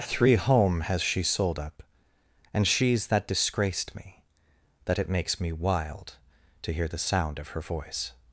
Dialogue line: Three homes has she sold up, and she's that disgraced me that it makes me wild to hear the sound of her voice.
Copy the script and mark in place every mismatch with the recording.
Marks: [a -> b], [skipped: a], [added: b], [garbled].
Three [homes -> home] has she sold up, and she's that disgraced me that it makes me wild to hear the sound of her voice.